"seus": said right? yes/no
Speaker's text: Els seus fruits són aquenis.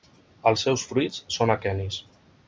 yes